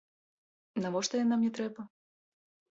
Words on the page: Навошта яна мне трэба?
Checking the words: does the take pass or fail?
pass